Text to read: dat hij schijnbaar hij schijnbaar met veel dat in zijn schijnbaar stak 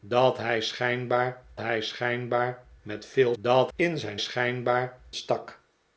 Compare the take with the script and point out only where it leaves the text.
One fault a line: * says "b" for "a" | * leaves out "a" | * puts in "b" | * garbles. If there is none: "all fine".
all fine